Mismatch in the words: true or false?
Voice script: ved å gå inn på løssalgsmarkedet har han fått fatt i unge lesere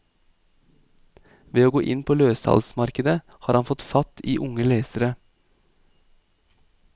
false